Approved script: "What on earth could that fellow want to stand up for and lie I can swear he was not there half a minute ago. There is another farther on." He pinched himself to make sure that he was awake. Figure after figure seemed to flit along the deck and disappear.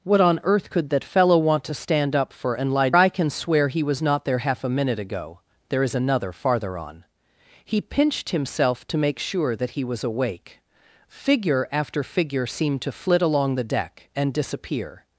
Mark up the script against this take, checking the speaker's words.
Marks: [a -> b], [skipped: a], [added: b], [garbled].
"What on earth could that fellow want to stand up for and lie I can swear he was not there half a minute ago. There is another farther on." He pinched himself to make sure that he was awake. Figure after figure seemed to flit along the deck and disappear.